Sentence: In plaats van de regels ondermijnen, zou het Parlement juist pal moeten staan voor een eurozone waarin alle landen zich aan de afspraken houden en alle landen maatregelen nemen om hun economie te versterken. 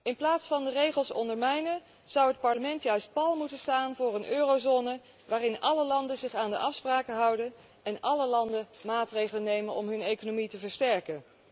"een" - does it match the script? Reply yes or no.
yes